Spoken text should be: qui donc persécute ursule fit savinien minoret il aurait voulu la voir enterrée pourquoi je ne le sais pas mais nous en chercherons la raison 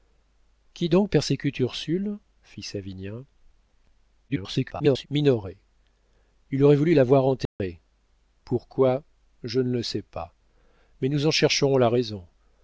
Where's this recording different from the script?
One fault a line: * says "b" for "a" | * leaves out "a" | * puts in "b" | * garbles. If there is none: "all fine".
* garbles